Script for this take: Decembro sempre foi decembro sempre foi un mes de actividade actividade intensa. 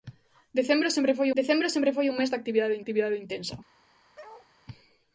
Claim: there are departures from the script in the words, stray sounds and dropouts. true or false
true